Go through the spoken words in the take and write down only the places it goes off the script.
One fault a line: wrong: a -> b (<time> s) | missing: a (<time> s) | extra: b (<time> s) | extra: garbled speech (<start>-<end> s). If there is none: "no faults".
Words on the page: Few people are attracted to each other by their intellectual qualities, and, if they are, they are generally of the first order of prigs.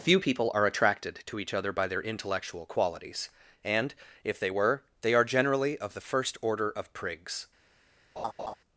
wrong: are -> were (4.5 s)